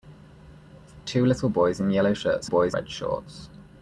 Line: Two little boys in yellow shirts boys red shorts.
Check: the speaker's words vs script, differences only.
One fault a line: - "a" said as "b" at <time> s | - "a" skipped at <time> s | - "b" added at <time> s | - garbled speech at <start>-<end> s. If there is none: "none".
none